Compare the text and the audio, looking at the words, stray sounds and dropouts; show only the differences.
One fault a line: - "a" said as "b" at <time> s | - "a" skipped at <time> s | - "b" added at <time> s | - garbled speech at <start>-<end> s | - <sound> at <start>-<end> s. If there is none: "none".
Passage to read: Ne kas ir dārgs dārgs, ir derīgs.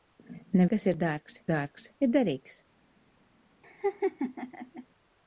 - laugh at 3.6-4.9 s